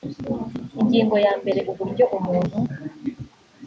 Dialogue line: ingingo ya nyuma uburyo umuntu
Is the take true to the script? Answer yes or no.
no